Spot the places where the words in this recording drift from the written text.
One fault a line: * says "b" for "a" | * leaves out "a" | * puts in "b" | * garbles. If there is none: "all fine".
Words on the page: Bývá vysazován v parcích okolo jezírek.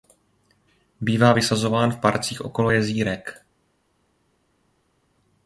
all fine